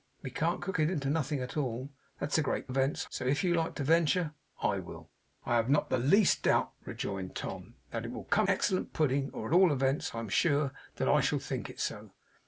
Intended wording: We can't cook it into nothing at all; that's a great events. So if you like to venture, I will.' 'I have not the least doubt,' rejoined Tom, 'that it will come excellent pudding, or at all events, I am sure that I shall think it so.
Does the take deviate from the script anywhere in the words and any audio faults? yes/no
no